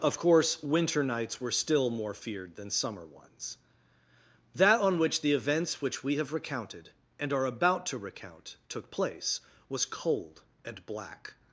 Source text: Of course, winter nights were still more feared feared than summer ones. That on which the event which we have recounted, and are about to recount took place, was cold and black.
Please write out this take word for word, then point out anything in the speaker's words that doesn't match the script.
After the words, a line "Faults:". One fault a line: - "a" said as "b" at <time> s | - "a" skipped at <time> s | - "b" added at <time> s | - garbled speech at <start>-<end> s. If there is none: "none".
Of course, winter nights were still more feared than summer ones. That on which the events which we have recounted, and are about to recount took place, was cold and black.
Faults:
- "feared" skipped at 2.5 s
- "event" said as "events" at 5.3 s